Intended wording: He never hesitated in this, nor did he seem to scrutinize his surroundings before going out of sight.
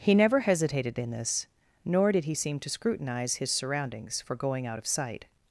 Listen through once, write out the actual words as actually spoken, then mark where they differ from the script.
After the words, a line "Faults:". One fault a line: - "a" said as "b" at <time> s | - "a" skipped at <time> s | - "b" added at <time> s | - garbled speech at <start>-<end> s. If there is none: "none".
He never hesitated in this, nor did he seem to scrutinize his surroundings for going out of sight.
Faults:
- "before" said as "for" at 4.2 s